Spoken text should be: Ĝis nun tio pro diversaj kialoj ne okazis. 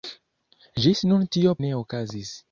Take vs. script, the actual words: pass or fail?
fail